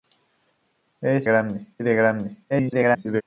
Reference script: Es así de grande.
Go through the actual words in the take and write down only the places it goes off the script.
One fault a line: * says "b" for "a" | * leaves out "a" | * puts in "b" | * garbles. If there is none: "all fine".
* says "grande" for "así"
* garbles